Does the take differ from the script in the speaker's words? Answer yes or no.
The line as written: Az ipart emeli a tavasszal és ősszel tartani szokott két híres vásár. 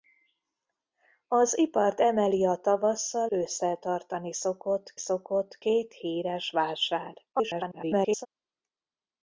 yes